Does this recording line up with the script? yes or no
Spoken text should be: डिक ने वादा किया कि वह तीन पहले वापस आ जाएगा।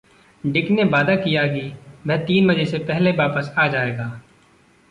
no